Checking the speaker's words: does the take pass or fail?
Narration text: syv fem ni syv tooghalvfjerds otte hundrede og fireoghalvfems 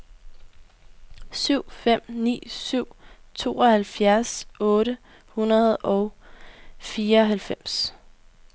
pass